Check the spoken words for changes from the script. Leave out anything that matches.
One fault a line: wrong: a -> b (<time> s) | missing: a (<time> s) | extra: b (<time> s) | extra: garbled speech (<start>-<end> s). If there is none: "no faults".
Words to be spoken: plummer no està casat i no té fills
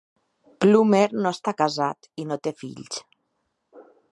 no faults